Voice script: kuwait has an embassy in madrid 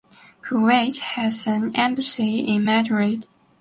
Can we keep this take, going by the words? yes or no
yes